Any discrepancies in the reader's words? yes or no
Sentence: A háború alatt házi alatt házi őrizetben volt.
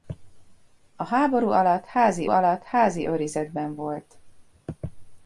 no